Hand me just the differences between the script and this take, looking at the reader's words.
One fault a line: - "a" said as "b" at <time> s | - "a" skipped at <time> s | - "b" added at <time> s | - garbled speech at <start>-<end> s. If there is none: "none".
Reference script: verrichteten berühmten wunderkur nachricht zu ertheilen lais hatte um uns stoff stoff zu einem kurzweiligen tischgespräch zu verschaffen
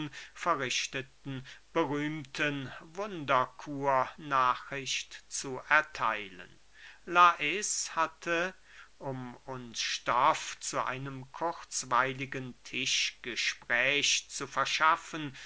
- "stoff" skipped at 10.6 s